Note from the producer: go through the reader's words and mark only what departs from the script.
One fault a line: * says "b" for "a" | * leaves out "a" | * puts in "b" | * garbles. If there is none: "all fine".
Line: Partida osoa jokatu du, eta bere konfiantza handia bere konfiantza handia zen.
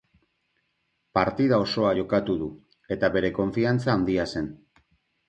* leaves out "bere konfiantza handia"